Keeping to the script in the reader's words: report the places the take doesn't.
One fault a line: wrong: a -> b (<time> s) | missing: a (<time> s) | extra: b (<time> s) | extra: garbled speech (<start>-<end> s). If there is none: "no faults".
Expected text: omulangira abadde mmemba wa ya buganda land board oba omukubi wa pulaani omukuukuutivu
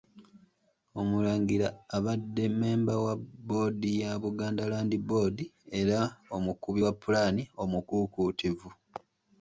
extra: bboodi (3.2 s)
wrong: oba -> era (5.8 s)